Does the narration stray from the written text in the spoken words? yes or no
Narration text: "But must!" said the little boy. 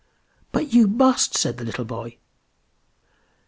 yes